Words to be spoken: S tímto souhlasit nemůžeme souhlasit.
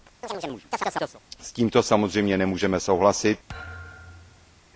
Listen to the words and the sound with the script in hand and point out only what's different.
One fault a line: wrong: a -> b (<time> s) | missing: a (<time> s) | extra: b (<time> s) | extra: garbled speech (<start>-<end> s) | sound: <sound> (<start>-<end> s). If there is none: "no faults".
sound: chirp (0.2-1.2 s)
wrong: souhlasit -> samozřejmě (1.8 s)
sound: thud (3.5-4.6 s)